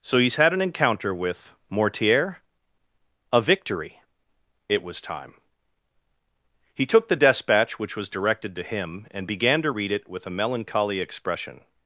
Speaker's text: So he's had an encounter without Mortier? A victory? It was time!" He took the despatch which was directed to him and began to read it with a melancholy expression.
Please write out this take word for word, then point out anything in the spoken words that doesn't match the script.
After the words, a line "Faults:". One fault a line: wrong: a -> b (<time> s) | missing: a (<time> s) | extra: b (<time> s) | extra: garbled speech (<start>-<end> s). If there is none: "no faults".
So he's had an encounter with Mortier? A victory? It was time!" He took the despatch which was directed to him and began to read it with a melancholy expression.
Faults:
wrong: without -> with (1.1 s)